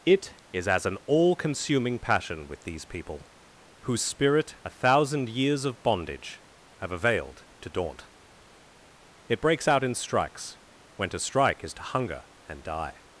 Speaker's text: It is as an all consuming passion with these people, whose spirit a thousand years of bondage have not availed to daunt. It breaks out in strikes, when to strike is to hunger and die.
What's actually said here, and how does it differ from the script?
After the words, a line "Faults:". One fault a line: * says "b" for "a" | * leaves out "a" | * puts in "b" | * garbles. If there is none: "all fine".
It is as an all consuming passion with these people, whose spirit a thousand years of bondage have availed to daunt. It breaks out in strikes, when to strike is to hunger and die.
Faults:
* leaves out "not"